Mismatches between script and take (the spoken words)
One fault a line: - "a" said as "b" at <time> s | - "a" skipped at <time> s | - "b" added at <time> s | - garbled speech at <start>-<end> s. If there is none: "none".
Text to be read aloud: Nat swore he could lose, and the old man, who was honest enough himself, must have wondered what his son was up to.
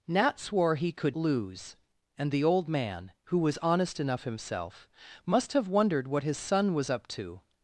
none